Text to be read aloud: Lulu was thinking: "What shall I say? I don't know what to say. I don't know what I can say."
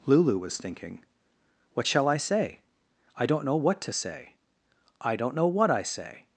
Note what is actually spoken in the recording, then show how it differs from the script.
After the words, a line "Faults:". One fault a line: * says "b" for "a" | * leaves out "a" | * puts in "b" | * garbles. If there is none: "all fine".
Lulu was thinking: "What shall I say? I don't know what to say. I don't know what I say."
Faults:
* leaves out "can"